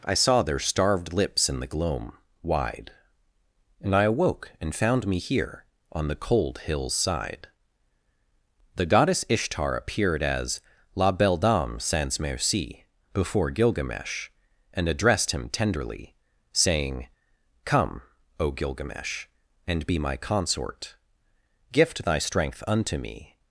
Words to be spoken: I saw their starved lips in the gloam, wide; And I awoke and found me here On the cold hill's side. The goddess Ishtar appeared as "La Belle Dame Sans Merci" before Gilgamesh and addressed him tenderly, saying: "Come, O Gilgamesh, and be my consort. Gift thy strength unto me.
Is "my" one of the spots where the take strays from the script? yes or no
no